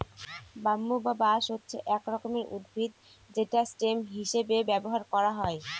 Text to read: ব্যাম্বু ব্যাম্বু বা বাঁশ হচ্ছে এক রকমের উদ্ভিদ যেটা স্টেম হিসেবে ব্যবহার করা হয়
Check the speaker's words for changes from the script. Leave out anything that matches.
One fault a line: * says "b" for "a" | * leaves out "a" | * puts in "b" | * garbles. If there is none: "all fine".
* leaves out "ব্যাম্বু"